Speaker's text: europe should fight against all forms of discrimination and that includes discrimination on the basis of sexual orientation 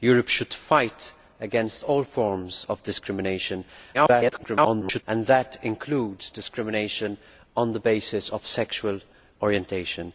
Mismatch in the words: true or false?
true